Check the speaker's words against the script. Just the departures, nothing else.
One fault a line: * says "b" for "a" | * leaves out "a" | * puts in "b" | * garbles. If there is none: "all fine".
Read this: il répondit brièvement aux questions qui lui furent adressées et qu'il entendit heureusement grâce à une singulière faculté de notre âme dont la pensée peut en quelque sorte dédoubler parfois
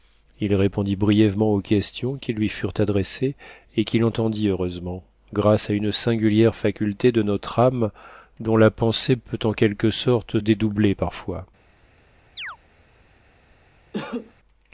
all fine